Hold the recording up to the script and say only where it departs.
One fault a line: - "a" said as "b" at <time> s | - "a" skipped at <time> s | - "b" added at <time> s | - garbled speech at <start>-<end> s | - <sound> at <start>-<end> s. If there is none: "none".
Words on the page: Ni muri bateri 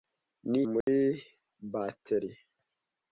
- dropout at 0.8-0.9 s